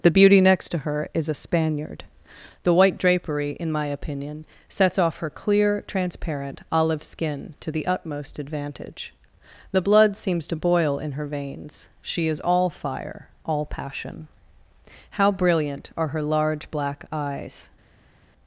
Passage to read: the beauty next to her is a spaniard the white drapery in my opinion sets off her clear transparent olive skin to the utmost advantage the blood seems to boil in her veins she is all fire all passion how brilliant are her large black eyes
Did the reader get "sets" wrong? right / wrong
right